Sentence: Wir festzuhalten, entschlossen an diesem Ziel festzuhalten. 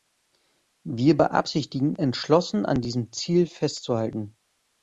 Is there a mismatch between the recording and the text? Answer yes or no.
yes